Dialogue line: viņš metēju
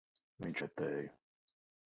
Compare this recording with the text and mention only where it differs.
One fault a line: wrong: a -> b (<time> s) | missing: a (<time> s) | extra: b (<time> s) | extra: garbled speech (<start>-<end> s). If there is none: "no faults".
no faults